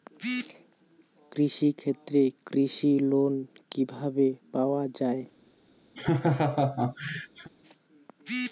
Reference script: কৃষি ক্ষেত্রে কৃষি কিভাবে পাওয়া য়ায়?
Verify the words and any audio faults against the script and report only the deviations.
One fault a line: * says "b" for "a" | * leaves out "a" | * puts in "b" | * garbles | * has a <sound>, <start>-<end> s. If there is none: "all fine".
* puts in "লোন"
* has a laugh, 5.9-7.5 s